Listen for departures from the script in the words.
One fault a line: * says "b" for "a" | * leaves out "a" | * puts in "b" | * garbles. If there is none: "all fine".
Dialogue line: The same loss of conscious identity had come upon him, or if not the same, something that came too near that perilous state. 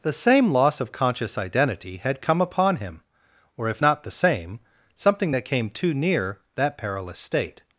all fine